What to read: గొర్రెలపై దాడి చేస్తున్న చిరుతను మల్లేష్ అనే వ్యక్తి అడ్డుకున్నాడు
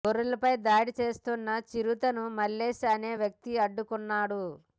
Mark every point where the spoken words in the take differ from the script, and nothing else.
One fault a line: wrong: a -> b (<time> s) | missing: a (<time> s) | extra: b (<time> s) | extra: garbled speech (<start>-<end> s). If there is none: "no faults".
no faults